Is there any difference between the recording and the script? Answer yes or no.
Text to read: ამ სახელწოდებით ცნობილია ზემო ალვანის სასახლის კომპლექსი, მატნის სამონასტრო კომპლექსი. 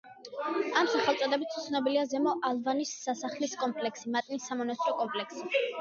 no